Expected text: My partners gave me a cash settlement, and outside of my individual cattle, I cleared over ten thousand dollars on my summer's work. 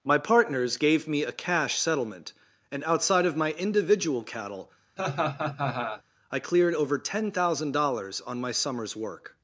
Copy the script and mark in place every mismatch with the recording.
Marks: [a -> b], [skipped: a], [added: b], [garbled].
My partners gave me a cash settlement, and outside of my individual cattle, I cleared over ten thousand dollars on my summer's work.